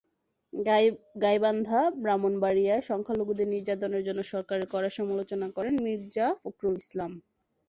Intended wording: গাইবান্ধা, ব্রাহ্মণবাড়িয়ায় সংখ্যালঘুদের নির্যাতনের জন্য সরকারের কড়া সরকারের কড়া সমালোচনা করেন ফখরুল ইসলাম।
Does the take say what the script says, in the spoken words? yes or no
no